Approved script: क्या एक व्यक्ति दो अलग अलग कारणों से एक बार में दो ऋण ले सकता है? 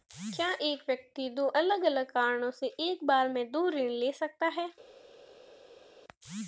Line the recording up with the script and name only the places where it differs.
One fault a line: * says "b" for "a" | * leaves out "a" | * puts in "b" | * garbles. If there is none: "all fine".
all fine